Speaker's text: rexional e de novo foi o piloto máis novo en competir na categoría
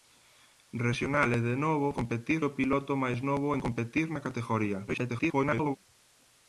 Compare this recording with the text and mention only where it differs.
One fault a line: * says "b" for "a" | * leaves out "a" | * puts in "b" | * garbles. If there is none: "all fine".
* says "competir" for "foi"
* garbles